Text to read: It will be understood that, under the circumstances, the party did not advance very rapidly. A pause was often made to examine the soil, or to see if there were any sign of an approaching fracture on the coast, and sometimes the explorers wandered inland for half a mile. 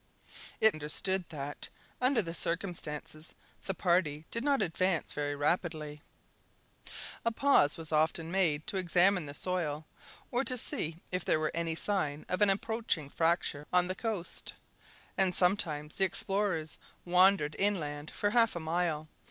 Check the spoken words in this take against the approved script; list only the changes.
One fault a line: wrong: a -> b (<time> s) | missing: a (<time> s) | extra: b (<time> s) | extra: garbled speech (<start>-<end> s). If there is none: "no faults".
missing: will be (0.8 s)